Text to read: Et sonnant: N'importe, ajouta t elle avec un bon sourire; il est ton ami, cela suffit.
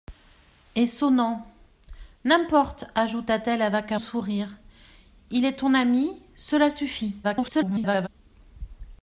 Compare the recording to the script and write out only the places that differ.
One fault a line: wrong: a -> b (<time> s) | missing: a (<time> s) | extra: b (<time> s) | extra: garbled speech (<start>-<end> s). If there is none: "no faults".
missing: bon (4.0 s)
extra: garbled speech (7.2-8.1 s)